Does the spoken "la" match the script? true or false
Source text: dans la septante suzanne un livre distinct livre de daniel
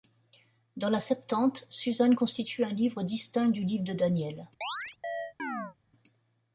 true